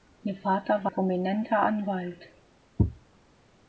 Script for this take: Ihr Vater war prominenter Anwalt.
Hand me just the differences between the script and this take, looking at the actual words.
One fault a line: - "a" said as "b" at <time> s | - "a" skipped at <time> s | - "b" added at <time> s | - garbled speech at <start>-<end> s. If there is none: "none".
none